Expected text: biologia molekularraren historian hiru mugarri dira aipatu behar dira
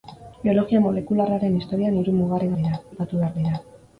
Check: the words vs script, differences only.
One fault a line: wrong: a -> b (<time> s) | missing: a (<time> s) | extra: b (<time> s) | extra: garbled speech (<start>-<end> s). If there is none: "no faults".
no faults